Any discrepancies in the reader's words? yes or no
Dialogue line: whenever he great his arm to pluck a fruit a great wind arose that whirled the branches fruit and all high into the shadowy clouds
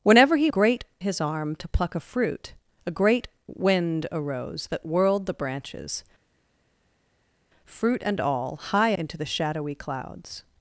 no